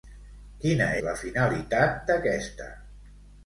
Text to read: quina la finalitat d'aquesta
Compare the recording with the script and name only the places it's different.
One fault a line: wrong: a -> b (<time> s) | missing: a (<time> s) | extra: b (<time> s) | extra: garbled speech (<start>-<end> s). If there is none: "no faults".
no faults